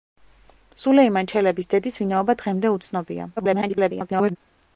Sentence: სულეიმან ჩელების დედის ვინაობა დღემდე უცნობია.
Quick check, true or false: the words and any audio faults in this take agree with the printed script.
false